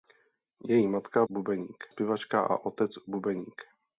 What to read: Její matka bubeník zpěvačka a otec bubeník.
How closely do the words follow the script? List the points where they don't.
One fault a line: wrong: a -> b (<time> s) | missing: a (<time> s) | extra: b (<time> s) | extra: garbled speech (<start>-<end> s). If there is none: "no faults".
no faults